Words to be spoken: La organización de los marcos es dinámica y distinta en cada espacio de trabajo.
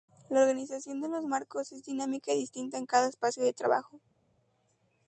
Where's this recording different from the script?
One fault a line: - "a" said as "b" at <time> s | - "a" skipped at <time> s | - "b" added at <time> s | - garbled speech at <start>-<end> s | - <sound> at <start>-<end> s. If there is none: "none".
none